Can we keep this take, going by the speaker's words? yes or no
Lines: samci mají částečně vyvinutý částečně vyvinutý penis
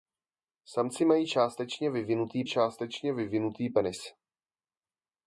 yes